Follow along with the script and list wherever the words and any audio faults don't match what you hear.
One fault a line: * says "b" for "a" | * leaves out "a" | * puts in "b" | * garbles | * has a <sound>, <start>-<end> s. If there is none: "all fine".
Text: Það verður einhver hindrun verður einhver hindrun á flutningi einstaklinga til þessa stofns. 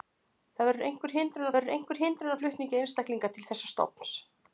all fine